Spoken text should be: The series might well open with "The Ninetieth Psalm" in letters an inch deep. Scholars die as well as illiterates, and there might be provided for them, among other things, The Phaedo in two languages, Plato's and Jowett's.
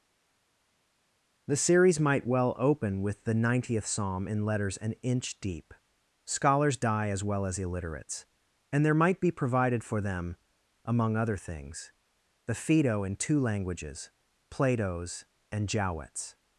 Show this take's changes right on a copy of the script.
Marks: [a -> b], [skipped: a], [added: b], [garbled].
The series might well open with "The Ninetieth Psalm" in letters an inch deep. Scholars die as well as illiterates, and there might be provided for them, among other things, The Phaedo in two languages, Plato's and Jowett's.